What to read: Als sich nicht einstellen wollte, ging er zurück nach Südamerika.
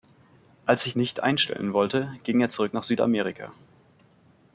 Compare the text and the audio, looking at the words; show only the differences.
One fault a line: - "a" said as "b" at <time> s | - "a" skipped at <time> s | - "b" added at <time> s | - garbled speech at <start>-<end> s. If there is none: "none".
none